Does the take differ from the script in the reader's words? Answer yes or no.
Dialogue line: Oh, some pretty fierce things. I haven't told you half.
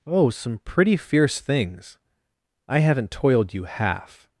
yes